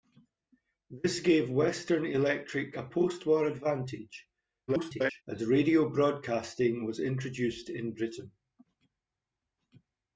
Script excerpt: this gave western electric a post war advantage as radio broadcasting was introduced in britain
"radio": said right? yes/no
yes